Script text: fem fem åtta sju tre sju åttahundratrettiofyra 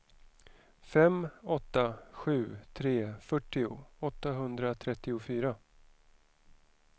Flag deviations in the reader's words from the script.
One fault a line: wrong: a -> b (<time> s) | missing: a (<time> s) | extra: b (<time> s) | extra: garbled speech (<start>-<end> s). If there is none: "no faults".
missing: fem (1.3 s)
wrong: sju -> fyrtio (3.2 s)